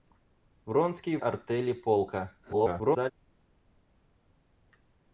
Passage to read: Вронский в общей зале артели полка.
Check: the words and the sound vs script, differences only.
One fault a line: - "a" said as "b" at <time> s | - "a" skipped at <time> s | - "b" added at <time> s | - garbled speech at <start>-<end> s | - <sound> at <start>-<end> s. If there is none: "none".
- "в общей зале" skipped at 1.2 s
- garbled speech at 2.4-3.1 s